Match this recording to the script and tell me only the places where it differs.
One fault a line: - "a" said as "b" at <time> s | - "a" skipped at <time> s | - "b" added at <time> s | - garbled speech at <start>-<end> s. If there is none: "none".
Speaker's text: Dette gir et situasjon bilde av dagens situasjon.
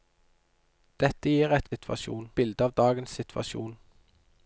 none